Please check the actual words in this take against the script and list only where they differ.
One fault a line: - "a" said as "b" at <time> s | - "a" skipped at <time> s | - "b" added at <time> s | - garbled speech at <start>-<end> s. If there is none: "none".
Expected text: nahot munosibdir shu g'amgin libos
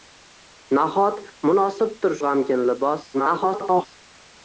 - "shu" skipped at 2.1 s
- garbled speech at 3.1-3.9 s